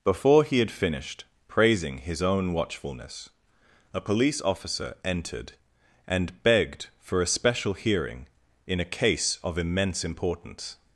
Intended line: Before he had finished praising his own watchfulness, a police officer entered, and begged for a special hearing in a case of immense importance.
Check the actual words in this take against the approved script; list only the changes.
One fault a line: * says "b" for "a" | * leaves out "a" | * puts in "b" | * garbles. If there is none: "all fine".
all fine